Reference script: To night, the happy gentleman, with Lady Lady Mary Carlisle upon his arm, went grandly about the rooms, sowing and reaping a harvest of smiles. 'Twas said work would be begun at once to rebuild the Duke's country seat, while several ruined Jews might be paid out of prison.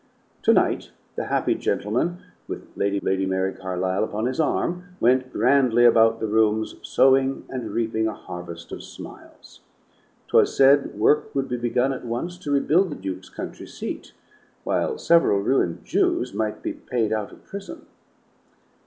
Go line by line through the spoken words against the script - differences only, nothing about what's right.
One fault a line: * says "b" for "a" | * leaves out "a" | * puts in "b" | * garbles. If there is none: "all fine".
all fine